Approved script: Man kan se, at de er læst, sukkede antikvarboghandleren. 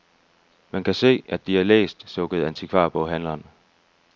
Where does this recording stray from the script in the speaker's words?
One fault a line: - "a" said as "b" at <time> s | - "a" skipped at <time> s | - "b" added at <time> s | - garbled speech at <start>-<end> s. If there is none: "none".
none